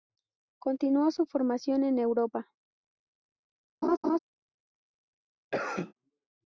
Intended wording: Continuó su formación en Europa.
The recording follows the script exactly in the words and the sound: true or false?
false